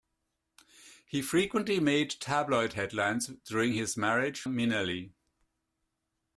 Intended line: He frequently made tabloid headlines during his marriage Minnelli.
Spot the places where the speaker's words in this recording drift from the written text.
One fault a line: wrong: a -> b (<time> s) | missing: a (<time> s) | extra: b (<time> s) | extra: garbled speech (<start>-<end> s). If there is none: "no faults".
no faults